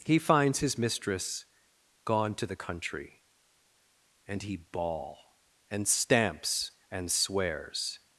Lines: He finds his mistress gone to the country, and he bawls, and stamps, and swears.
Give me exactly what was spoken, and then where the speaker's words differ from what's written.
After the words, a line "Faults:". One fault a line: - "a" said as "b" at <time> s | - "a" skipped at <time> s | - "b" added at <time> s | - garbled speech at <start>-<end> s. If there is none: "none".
He finds his mistress gone to the country, and he bawl, and stamps, and swears.
Faults:
- "bawls" said as "bawl" at 4.6 s